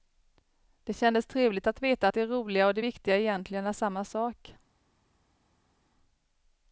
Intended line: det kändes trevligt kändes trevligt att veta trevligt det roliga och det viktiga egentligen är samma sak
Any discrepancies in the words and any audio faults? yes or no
yes